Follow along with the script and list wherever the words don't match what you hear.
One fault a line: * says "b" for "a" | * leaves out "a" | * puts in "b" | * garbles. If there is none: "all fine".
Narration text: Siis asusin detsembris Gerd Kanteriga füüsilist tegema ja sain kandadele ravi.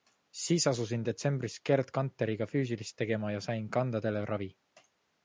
all fine